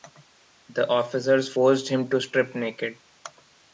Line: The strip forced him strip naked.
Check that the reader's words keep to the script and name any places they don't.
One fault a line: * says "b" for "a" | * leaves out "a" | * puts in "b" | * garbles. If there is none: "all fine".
* says "officers" for "strip"
* puts in "to"